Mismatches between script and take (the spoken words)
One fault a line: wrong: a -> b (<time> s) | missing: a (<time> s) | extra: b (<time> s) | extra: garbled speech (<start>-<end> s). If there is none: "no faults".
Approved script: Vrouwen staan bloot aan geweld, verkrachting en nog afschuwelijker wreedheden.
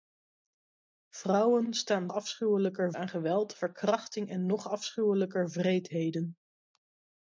wrong: bloot -> afschuwelijker (2.1 s)